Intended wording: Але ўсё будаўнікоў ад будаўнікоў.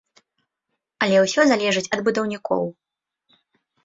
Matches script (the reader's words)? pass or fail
fail